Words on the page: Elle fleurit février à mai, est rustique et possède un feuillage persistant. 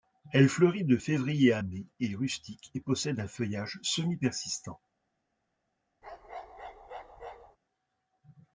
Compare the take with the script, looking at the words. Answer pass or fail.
fail